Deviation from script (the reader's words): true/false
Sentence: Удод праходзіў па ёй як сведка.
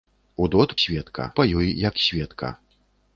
true